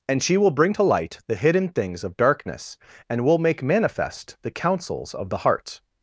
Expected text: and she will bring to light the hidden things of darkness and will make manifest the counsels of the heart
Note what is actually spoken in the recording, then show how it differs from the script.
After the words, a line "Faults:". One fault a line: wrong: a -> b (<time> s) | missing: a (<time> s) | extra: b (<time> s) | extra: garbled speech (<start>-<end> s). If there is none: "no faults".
and she will bring to light the hidden things of darkness and will make manifest the counsels of the heart
Faults:
no faults